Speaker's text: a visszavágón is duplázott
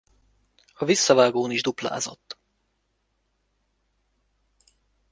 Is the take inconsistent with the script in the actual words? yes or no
no